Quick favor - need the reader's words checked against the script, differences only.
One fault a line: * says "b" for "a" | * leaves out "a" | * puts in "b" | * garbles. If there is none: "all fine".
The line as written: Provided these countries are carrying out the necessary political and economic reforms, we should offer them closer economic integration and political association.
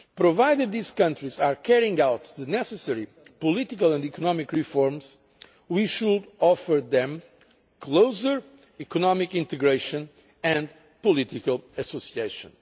all fine